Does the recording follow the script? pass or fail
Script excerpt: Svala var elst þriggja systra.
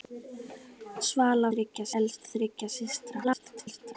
fail